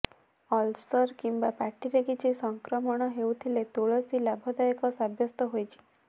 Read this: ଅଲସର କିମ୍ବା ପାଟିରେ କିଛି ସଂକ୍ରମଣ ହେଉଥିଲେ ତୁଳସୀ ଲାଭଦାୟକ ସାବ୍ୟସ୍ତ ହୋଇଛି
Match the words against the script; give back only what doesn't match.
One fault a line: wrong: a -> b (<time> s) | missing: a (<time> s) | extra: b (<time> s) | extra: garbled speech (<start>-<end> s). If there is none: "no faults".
no faults